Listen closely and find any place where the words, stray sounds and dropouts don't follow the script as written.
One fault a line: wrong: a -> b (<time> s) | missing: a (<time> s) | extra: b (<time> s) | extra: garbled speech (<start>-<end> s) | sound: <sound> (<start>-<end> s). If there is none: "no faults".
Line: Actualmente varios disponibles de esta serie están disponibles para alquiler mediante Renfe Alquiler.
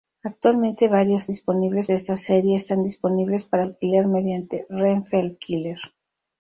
no faults